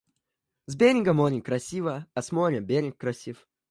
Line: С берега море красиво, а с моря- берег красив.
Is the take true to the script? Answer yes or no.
yes